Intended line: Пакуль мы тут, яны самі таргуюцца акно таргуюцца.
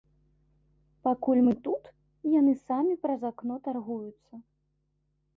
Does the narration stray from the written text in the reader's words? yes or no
yes